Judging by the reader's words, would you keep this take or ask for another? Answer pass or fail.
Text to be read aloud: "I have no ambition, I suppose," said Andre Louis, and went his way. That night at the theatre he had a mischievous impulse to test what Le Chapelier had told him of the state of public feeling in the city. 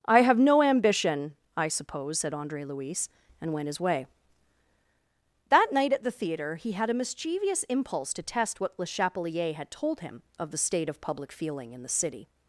pass